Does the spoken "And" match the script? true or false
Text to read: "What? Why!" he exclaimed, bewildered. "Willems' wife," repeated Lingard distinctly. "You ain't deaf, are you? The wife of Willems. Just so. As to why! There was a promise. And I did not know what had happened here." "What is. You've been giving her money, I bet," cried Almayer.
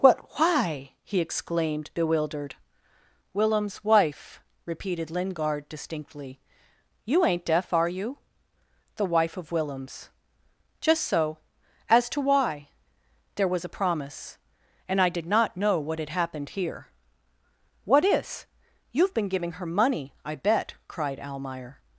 true